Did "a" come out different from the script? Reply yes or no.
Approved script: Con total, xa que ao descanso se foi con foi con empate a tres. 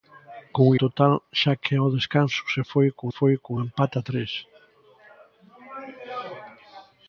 no